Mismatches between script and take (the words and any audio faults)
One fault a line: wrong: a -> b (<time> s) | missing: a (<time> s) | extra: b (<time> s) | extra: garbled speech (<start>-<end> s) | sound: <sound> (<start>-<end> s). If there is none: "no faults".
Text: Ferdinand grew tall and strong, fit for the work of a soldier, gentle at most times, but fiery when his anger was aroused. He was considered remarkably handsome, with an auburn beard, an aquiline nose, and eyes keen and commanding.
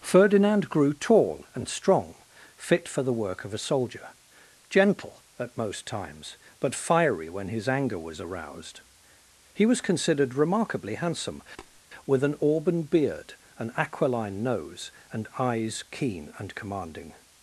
sound: tap (11.6-11.8 s)